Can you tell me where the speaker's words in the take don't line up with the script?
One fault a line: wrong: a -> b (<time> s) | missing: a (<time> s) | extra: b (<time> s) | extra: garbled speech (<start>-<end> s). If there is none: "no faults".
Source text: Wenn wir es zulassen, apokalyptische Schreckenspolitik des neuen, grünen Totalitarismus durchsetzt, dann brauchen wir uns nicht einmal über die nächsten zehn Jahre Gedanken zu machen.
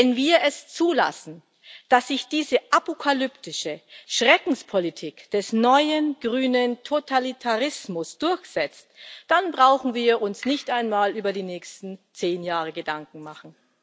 extra: dass sich diese (1.9 s)